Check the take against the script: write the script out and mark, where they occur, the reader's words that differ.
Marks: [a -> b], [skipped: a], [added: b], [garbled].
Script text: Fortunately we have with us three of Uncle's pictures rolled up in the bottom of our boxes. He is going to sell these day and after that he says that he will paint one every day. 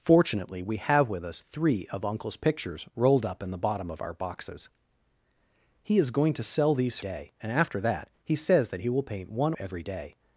Fortunately we have with us three of Uncle's pictures rolled up in the bottom of our boxes. He is going to sell these day and after that he says that he will paint one every day.